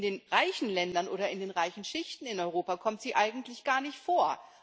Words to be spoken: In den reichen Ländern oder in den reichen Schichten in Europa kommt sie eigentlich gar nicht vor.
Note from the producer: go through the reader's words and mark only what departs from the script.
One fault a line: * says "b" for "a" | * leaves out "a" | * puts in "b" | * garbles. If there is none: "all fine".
all fine